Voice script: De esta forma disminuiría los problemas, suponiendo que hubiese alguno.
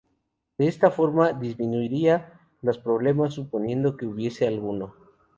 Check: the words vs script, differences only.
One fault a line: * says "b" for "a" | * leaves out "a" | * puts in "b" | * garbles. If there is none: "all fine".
all fine